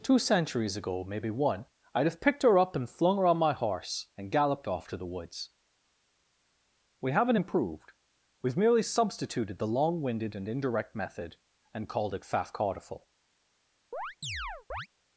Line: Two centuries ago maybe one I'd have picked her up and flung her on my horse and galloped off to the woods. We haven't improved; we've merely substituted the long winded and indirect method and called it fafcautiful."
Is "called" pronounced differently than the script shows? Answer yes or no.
no